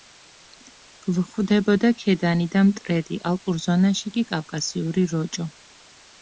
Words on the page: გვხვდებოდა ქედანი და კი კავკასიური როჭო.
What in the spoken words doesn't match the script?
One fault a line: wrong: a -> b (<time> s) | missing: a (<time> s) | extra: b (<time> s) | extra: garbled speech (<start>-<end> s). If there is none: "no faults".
extra: მტრედი ალპურ ზონაში (2.7 s)